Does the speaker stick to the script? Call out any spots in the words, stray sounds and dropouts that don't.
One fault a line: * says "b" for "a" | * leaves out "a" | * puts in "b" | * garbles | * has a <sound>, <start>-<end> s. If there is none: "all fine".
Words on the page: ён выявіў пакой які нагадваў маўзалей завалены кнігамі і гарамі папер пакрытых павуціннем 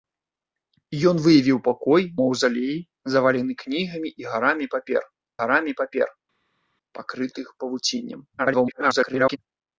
* leaves out "які нагадваў"
* puts in "гарамі папер"
* garbles